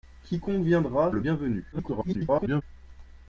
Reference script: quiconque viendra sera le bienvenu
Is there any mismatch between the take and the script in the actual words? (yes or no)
yes